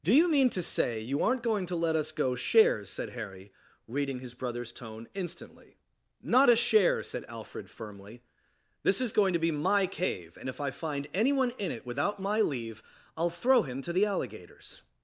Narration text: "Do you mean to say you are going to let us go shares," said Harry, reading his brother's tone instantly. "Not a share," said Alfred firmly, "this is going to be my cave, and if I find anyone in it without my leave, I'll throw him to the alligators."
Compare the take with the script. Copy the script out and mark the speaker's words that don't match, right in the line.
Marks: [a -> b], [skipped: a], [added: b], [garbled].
"Do you mean to say you [are -> aren't] going to let us go shares," said Harry, reading his brother's tone instantly. "Not a share," said Alfred firmly, "this is going to be my cave, and if I find anyone in it without my leave, I'll throw him to the alligators."